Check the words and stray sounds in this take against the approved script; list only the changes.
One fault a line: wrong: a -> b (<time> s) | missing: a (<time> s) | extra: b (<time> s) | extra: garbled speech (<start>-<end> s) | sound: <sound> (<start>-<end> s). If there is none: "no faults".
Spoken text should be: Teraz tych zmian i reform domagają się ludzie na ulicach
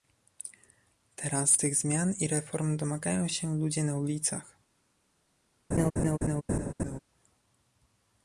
sound: laugh (5.7-7.0 s)